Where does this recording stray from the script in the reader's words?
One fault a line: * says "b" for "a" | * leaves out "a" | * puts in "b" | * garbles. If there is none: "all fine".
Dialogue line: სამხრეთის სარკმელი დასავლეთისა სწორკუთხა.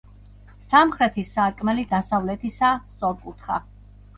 all fine